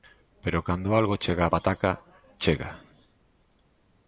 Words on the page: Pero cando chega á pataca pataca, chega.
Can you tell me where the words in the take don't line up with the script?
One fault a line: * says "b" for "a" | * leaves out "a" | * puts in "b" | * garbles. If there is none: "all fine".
* puts in "algo"
* leaves out "pataca"